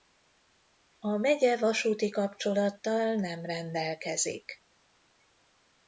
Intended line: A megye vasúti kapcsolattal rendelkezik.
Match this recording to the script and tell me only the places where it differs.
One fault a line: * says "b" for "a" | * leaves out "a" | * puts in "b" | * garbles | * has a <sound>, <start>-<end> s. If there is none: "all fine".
* puts in "nem"